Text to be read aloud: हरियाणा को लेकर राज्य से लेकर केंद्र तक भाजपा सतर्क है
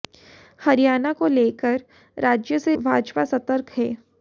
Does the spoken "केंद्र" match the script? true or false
false